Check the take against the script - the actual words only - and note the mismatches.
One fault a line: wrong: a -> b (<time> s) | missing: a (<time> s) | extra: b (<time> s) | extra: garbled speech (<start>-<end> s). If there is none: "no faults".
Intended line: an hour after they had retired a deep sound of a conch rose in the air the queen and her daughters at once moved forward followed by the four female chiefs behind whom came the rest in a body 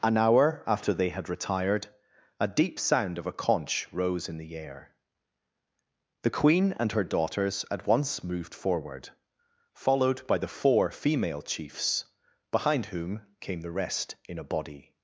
no faults